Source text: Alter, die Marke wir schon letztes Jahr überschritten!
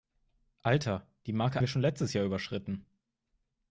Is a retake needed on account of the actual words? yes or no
no